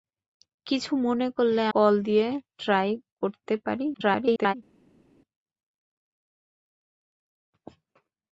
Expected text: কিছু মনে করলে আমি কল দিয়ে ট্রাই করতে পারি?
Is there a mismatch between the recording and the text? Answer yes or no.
yes